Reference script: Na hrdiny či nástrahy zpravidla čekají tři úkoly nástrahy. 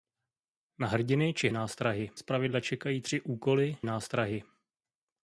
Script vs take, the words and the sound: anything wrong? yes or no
no